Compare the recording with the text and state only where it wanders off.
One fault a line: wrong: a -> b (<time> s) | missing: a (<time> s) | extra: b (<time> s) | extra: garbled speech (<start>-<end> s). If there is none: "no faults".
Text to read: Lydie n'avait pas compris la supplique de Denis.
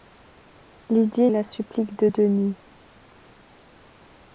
missing: n'avait pas compris (1.3 s)